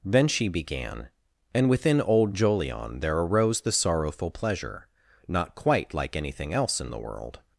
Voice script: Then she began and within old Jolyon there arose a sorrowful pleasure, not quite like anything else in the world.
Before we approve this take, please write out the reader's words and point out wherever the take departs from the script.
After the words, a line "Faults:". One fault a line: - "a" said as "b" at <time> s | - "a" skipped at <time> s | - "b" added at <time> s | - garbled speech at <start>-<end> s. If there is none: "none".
Then she began and within old Jolyon there arose the sorrowful pleasure, not quite like anything else in the world.
Faults:
- "a" said as "the" at 3.6 s